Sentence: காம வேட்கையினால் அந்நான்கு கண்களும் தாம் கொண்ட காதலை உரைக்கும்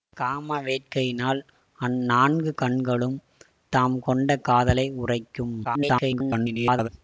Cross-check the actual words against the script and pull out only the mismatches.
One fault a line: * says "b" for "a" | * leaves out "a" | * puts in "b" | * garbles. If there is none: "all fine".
* garbles